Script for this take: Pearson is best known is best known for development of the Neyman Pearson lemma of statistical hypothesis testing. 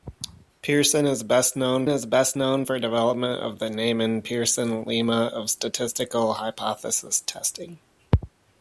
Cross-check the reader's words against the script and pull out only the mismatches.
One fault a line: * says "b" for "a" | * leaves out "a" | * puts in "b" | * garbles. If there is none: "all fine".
all fine